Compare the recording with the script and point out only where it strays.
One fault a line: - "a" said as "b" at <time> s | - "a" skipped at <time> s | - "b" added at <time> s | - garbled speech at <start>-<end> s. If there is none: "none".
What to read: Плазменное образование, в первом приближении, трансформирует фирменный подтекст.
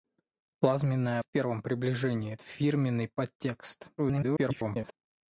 - "образование" skipped at 1.2 s
- "трансформирует" skipped at 2.4 s
- garbled speech at 4.0-5.0 s